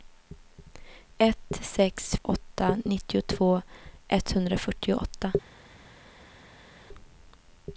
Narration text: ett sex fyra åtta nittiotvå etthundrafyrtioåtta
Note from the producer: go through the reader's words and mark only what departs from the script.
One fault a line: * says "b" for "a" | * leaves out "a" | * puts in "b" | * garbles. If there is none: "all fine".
* leaves out "fyra"